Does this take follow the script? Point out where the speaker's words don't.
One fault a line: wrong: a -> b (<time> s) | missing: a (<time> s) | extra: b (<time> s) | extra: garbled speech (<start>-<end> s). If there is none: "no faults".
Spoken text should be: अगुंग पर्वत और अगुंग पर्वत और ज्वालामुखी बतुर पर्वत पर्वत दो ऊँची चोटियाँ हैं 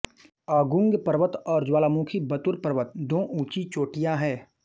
missing: अगुंग पर्वत और (1.6 s)
missing: पर्वत (2.9 s)